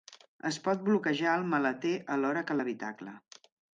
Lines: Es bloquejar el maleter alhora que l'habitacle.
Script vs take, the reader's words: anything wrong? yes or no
yes